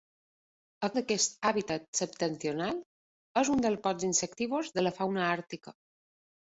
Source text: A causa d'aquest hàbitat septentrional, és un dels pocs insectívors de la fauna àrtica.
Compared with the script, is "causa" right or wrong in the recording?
wrong